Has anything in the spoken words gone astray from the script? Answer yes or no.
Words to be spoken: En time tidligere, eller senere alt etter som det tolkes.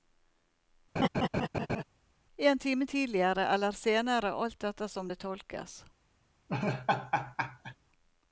no